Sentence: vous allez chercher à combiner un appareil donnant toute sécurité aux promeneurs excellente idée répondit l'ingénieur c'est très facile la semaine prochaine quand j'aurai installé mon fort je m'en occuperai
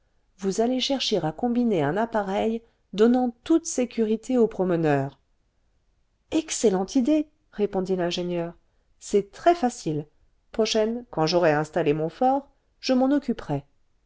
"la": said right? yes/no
no